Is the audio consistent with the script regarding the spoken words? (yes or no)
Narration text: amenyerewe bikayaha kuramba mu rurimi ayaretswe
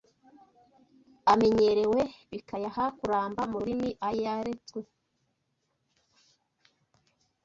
yes